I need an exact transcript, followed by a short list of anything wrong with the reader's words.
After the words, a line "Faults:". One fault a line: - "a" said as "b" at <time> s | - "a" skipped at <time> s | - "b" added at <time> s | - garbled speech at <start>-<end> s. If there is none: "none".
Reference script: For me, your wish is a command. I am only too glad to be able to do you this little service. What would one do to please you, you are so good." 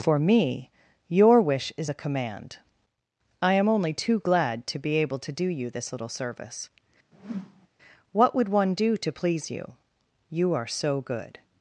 For me, your wish is a command. I am only too glad to be able to do you this little service. What would one do to please you, you are so good."
Faults:
none